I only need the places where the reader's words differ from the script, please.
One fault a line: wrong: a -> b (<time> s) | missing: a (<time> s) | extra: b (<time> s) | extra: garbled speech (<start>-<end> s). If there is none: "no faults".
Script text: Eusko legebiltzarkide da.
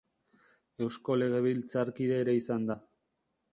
extra: ere izan (2.2 s)